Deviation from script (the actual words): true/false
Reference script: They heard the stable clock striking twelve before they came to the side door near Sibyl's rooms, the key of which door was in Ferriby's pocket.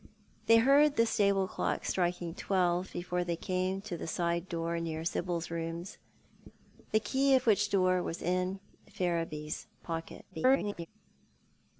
true